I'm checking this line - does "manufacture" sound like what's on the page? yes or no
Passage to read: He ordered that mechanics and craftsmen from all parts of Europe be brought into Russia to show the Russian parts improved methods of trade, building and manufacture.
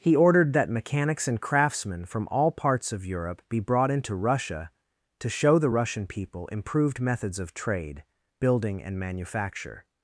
yes